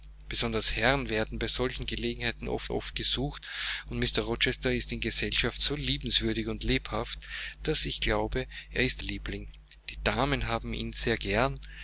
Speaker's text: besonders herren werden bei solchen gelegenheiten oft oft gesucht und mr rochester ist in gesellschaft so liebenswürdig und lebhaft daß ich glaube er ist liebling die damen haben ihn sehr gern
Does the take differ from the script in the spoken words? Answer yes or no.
no